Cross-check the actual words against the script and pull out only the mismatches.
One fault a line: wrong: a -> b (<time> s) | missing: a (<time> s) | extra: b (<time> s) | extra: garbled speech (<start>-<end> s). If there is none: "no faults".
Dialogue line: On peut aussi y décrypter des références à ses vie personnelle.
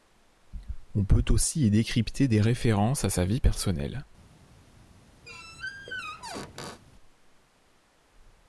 wrong: ses -> sa (3.1 s)